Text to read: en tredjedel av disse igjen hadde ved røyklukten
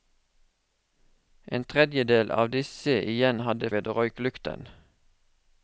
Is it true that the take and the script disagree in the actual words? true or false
false